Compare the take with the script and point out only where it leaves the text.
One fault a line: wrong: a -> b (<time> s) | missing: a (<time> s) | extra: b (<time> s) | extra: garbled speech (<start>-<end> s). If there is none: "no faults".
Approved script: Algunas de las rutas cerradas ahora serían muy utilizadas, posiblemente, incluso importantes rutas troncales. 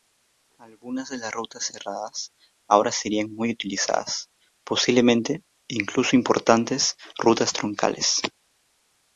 no faults